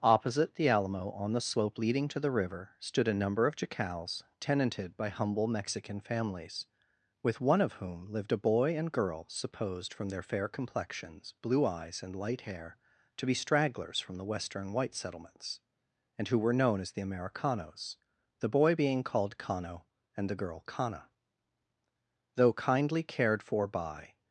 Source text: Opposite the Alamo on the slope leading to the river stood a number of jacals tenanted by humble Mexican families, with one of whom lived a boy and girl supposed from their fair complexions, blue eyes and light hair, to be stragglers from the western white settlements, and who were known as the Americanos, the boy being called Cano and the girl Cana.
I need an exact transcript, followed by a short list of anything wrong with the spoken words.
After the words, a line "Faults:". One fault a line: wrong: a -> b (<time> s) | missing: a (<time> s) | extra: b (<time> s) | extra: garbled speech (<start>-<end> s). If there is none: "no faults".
Opposite the Alamo on the slope leading to the river stood a number of jacals tenanted by humble Mexican families, with one of whom lived a boy and girl supposed from their fair complexions, blue eyes and light hair, to be stragglers from the western white settlements, and who were known as the Americanos, the boy being called Cano and the girl Cana. Though kindly cared for by
Faults:
extra: Though kindly cared for by (22.3 s)